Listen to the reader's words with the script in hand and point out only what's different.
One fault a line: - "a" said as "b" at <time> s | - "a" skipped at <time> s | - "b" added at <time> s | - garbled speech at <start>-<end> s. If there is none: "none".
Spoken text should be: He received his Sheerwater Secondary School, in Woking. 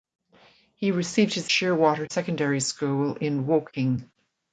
none